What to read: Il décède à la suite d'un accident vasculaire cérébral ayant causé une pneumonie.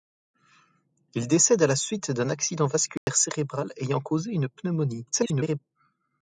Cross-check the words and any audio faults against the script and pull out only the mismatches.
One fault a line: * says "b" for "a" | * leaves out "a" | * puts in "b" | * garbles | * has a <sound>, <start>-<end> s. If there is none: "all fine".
* has a dropout, 3.0-3.1 s
* garbles